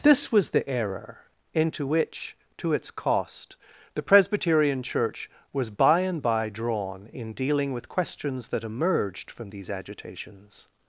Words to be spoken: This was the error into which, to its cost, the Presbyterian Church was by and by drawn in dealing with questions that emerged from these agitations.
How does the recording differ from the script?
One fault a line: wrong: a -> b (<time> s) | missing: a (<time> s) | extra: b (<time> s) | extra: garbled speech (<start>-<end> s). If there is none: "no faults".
no faults